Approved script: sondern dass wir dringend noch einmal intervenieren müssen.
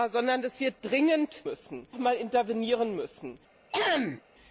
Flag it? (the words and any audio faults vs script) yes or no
yes